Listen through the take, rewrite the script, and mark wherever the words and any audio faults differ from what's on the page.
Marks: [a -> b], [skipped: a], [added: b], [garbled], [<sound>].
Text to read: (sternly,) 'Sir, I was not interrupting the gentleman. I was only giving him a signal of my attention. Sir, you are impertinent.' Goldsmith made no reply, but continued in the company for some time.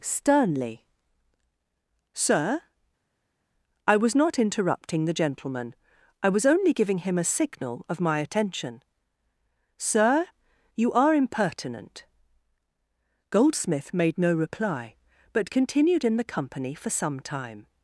(sternly,) 'Sir, I was not interrupting the gentleman. I was only giving him a signal of my attention. Sir, you are impertinent.' Goldsmith made no reply, but continued in the company for some time.